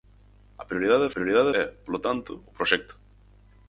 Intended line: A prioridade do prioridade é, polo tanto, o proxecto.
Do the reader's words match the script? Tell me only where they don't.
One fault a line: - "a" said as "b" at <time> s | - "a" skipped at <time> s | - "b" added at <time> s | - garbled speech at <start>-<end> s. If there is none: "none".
none